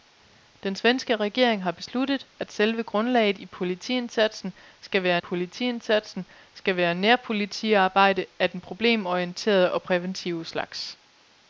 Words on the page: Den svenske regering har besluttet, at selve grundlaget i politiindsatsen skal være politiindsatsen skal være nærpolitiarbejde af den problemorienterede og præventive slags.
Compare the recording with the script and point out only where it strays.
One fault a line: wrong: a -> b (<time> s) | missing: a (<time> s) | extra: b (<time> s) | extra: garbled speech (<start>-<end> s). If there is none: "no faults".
no faults